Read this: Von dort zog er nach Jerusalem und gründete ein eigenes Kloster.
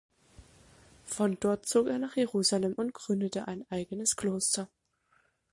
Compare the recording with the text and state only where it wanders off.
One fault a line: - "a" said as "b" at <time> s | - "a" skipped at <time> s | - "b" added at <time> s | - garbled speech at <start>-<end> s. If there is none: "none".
none